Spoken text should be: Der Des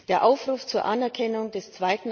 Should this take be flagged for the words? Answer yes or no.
yes